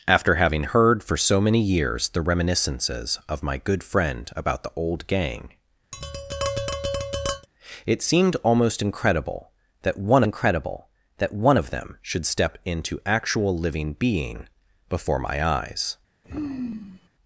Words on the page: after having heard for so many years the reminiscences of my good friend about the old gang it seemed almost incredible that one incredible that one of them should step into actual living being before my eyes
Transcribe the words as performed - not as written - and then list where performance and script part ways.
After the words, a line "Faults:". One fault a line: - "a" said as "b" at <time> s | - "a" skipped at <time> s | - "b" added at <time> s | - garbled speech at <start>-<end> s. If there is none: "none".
after having heard for so many years the reminiscences of my good friend about the old gang it seemed almost incredible that one incredible that one of them should step into actual living being before my eyes
Faults:
none